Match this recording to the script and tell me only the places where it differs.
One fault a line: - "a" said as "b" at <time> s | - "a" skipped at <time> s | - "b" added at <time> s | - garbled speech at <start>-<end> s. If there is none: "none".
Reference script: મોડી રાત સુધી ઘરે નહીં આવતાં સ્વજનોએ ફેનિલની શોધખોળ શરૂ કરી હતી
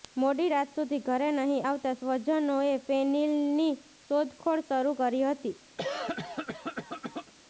none